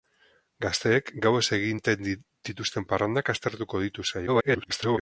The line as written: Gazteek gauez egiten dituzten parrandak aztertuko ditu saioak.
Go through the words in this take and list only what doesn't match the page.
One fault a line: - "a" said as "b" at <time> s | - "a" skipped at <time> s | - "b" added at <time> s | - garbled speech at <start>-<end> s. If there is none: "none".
- garbled speech at 4.3-5.0 s